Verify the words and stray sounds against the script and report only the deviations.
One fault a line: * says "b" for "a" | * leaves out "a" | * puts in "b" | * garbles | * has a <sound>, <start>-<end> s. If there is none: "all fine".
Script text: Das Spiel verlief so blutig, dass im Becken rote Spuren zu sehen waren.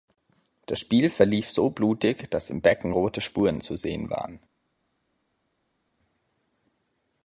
all fine